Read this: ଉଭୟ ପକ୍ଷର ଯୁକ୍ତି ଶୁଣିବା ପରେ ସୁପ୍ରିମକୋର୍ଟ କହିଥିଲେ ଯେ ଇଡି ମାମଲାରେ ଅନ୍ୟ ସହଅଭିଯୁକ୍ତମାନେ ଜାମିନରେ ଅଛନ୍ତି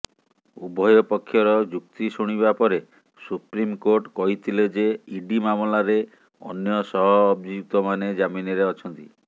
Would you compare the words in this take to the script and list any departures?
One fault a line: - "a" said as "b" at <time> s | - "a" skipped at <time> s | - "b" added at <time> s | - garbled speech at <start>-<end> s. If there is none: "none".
none